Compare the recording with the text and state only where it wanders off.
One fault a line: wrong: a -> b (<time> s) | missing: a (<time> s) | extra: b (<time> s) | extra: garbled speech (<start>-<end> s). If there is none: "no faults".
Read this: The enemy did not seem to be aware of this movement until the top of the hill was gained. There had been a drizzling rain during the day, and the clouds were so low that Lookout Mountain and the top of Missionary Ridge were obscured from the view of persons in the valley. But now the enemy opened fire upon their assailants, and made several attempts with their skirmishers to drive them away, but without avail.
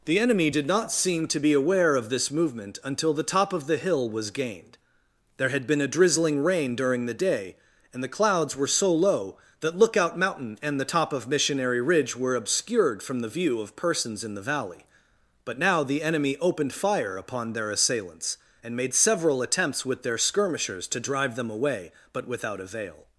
no faults